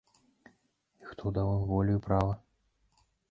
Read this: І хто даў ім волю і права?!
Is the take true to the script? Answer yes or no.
yes